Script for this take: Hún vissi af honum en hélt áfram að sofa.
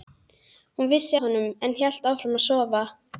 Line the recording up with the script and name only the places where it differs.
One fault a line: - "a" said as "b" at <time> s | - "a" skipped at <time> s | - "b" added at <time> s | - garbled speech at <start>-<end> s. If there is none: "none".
- "af" skipped at 1.2 s